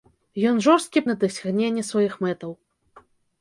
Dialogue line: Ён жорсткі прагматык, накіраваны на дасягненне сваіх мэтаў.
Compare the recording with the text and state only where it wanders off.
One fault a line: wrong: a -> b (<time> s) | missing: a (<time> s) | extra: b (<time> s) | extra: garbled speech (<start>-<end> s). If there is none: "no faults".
missing: прагматык накіраваны (1.0 s)